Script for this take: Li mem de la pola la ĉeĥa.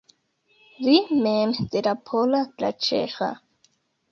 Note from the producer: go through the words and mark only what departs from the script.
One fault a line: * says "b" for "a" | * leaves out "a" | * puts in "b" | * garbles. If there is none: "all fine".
all fine